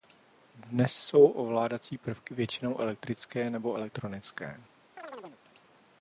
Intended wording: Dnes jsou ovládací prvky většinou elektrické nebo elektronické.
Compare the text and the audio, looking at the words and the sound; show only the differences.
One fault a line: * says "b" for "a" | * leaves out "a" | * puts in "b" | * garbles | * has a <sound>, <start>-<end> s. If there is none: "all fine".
* has a chirp, 5.0-5.4 s